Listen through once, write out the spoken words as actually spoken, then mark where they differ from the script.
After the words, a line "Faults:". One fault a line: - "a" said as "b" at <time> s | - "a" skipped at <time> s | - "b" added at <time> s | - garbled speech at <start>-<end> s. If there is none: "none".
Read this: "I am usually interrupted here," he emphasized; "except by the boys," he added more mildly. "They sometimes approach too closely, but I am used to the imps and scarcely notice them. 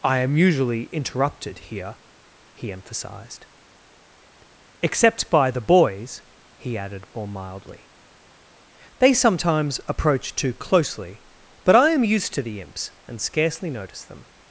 "I am usually interrupted here," he emphasized; "except by the boys," he added more mildly. "They sometimes approach too closely, but I am used to the imps and scarcely notice them.
Faults:
none